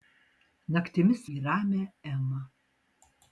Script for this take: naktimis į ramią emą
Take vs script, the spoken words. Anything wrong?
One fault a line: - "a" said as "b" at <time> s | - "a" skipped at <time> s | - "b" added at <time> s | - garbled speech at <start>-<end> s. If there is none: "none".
none